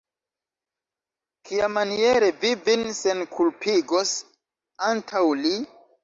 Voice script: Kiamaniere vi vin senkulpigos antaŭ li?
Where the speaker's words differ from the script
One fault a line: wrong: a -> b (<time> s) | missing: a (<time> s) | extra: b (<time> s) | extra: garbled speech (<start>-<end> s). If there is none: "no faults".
no faults